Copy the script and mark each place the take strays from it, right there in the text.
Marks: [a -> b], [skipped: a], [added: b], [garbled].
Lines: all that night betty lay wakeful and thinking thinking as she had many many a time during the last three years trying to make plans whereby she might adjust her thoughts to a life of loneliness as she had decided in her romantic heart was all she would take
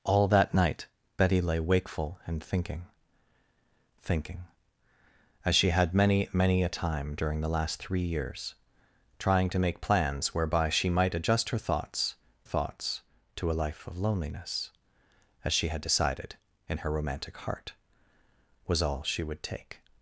all that night betty lay wakeful and thinking thinking as she had many many a time during the last three years trying to make plans whereby she might adjust her thoughts [added: thoughts] to a life of loneliness as she had decided in her romantic heart was all she would take